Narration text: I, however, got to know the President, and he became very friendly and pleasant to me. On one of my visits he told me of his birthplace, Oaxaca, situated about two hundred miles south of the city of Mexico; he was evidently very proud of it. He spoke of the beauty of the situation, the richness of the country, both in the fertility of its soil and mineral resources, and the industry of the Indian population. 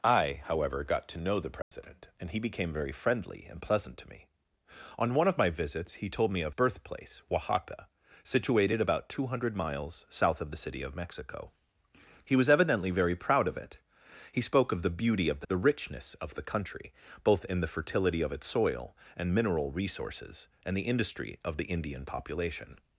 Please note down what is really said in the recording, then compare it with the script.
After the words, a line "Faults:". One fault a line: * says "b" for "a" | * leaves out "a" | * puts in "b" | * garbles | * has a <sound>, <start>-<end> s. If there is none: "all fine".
I, however, got to know the President, and he became very friendly and pleasant to me. On one of my visits he told me of birthplace, Oaxaca, situated about two hundred miles south of the city of Mexico; he was evidently very proud of it. He spoke of the beauty of the the richness of the country, both in the fertility of its soil and mineral resources, and the industry of the Indian population.
Faults:
* has a dropout, 1.6-1.7 s
* leaves out "his"
* leaves out "situation"